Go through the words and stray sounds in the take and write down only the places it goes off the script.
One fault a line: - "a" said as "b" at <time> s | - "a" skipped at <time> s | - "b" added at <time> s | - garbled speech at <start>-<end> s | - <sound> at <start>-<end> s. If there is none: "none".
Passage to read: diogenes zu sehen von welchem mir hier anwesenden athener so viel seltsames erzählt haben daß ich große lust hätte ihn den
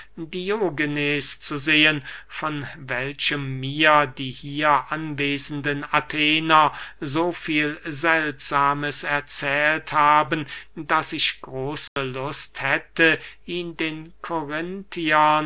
- "die" added at 4.1 s
- dropout at 11.9-12.0 s